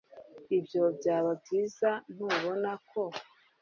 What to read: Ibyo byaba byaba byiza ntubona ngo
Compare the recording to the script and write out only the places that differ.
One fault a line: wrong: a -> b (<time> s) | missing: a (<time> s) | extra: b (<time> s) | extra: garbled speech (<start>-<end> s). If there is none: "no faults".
missing: byaba (1.3 s)
wrong: ngo -> ko (2.9 s)